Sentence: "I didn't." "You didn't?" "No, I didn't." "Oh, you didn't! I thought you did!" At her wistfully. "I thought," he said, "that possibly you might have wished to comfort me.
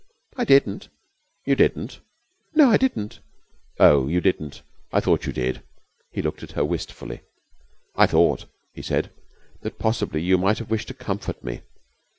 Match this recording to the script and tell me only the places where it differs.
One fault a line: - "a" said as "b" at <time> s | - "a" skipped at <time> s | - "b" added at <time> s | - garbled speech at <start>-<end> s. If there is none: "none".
- "He looked" added at 6.1 s